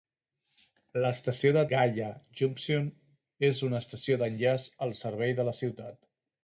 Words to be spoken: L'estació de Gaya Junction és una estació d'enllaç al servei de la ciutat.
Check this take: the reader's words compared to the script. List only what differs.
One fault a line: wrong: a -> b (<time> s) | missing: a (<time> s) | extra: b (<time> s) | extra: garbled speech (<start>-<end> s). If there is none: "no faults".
no faults